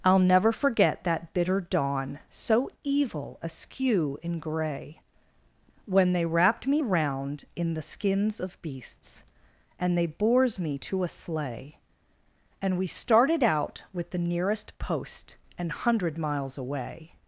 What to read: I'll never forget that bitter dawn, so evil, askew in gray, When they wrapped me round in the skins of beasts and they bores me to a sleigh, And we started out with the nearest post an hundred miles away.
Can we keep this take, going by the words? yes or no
yes